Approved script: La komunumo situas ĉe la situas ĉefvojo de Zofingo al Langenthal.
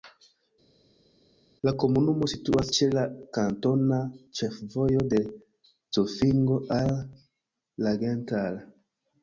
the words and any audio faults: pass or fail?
fail